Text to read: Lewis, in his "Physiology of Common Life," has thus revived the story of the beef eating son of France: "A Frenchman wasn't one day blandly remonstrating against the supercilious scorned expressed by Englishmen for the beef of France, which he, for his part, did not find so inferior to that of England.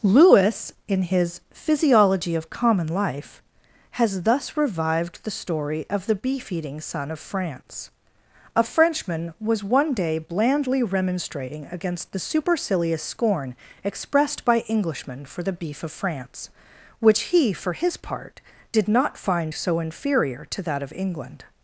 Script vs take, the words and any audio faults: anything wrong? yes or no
yes